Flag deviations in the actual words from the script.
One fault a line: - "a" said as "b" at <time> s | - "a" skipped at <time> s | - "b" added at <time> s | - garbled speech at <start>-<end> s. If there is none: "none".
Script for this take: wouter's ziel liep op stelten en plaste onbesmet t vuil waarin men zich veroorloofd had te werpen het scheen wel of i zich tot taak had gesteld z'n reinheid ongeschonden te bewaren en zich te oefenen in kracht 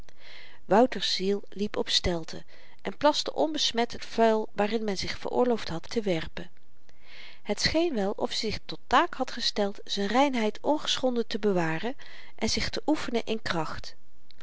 none